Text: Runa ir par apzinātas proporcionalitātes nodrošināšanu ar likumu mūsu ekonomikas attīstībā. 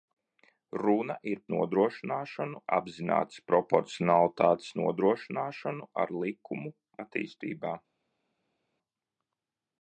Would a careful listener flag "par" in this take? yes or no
yes